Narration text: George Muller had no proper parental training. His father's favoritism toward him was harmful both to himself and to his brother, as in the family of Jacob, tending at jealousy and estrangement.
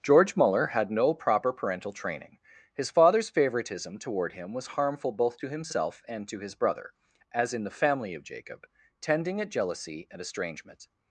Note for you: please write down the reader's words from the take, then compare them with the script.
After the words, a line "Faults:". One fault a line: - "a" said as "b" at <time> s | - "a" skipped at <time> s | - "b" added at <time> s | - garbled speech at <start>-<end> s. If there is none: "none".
George Muller had no proper parental training. His father's favoritism toward him was harmful both to himself and to his brother, as in the family of Jacob, tending at jealousy and estrangement.
Faults:
none